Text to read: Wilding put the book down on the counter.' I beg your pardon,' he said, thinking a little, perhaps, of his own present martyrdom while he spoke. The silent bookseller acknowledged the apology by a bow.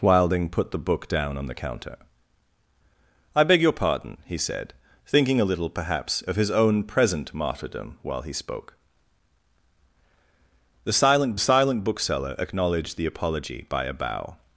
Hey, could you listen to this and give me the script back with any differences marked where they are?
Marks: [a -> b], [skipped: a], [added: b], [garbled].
Wilding put the book down on the counter.' I beg your pardon,' he said, thinking a little, perhaps, of his own present martyrdom while he spoke. The silent [added: silent] bookseller acknowledged the apology by a bow.